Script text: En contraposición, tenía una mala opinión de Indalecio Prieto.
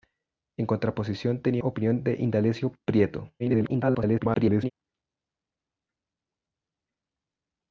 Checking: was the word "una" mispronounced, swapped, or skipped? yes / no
yes